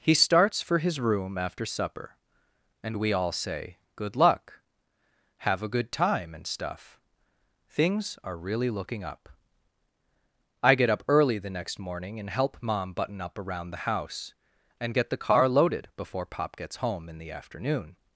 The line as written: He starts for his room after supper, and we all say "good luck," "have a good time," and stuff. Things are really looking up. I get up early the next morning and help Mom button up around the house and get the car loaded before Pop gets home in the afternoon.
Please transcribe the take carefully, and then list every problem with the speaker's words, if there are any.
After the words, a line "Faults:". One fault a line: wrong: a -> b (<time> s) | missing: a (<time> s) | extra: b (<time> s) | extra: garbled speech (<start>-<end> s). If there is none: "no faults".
He starts for his room after supper, and we all say "good luck," "have a good time," and stuff. Things are really looking up. I get up early the next morning and help Mom button up around the house and get the car loaded before Pop gets home in the afternoon.
Faults:
no faults